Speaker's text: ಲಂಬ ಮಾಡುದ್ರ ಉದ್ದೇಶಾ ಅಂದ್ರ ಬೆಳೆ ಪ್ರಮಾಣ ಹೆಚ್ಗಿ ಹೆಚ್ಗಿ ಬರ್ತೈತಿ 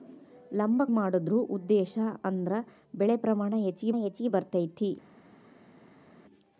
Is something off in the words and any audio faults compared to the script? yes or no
no